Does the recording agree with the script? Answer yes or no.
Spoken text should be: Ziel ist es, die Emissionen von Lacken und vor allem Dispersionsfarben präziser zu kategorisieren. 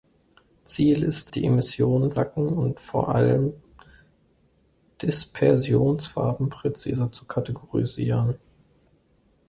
no